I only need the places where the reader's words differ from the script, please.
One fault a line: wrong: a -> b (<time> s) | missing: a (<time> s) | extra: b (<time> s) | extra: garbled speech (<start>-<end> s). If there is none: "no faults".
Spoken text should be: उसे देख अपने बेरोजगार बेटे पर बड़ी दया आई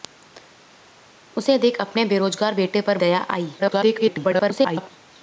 missing: बड़ी (3.0 s)
extra: garbled speech (3.6-4.9 s)